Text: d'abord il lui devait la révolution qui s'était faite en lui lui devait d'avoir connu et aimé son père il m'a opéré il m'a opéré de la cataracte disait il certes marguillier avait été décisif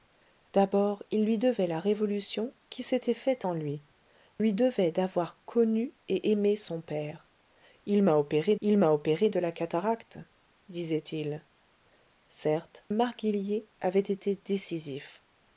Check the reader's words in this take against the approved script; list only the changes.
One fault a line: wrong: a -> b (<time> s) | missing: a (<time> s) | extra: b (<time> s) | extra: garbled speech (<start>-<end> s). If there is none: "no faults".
no faults